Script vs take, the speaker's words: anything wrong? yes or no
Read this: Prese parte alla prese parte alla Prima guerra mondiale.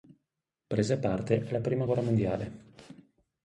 yes